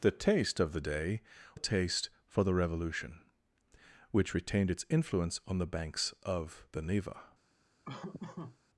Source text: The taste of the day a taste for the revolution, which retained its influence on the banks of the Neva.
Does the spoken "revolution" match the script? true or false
true